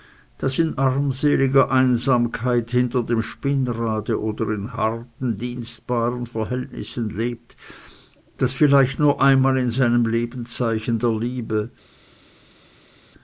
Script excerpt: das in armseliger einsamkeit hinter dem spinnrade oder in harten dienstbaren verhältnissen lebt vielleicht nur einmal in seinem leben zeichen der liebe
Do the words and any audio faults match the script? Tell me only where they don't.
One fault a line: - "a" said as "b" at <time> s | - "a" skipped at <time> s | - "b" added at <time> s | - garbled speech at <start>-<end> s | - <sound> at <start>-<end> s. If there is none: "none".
- "das" added at 8.4 s